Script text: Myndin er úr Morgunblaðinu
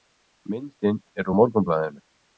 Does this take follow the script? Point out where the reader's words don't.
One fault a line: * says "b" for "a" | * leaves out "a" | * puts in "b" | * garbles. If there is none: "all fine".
all fine